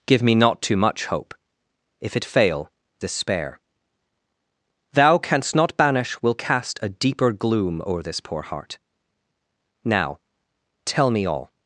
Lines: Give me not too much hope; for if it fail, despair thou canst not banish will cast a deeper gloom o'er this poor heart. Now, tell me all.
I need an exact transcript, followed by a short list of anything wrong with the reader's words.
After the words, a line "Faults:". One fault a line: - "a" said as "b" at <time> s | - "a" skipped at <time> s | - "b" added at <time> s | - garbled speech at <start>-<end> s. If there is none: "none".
Give me not too much hope; if it fail, despair thou canst not banish will cast a deeper gloom o'er this poor heart. Now, tell me all.
Faults:
- "for" skipped at 1.3 s